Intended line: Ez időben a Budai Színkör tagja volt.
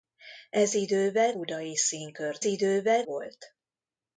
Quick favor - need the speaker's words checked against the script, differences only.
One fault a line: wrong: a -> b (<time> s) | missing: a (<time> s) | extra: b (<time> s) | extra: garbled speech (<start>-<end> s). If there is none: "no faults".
missing: a (1.4 s)
wrong: tagja -> időben (2.4 s)